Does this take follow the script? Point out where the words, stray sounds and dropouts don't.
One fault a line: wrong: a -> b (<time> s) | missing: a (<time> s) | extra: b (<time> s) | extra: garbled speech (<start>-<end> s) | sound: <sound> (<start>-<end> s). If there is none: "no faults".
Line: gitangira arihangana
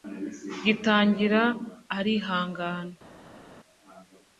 no faults